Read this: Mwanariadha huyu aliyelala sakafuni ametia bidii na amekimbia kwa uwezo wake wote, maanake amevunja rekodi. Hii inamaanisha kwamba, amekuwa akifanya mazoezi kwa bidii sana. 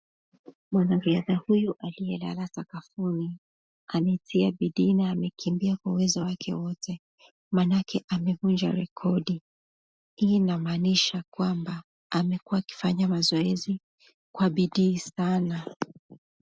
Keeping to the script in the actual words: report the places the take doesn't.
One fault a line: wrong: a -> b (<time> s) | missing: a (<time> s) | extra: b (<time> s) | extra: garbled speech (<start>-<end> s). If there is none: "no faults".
no faults